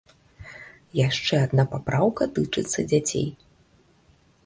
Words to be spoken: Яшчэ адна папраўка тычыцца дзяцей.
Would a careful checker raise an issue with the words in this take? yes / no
no